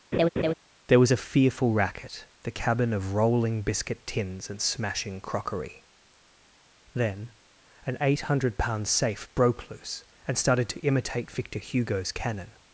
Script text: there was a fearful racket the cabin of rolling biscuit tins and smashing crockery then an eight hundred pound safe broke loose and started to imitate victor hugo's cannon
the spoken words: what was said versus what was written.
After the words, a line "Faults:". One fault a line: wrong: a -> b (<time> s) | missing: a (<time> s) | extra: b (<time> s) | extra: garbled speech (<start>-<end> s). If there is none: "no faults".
there was a fearful racket the cabin of rolling biscuit tins and smashing crockery then an eight hundred pound safe broke loose and started to imitate victor hugo's cannon
Faults:
no faults